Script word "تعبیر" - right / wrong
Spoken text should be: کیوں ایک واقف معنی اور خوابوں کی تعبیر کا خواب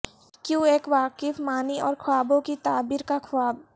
right